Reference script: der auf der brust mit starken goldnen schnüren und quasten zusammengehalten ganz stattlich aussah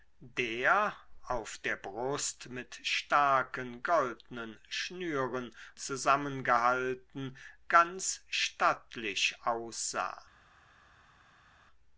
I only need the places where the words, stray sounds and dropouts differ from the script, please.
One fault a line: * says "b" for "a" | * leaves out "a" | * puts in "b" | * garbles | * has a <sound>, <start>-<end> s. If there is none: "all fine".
* leaves out "und quasten"